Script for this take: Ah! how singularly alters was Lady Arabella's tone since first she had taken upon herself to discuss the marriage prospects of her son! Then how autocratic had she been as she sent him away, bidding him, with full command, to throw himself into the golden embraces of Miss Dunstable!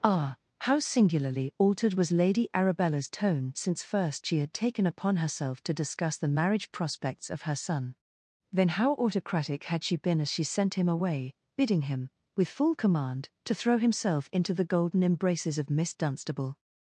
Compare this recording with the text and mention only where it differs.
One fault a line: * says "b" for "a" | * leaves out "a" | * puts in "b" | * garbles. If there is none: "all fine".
* says "altered" for "alters"